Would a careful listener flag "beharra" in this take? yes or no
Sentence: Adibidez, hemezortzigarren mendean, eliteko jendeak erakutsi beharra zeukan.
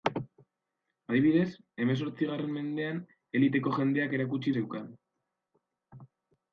yes